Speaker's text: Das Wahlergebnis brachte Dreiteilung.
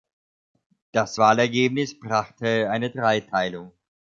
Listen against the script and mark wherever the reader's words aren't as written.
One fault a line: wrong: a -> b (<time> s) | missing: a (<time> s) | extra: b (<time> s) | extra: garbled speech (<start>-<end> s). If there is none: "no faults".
extra: eine (2.7 s)